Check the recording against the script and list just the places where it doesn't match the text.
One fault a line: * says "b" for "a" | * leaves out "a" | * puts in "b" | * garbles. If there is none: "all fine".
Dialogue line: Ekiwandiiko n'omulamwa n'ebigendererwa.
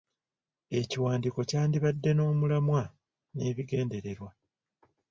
* puts in "kyandibadde"